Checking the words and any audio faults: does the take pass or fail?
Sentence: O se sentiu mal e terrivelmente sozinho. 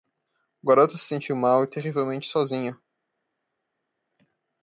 fail